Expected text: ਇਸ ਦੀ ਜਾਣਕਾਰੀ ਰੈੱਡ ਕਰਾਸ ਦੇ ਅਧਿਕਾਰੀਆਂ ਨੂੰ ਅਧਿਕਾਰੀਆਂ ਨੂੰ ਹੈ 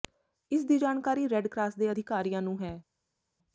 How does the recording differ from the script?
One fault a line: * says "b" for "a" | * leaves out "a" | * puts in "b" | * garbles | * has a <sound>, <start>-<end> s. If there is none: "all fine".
* leaves out "ਅਧਿਕਾਰੀਆਂ ਨੂੰ"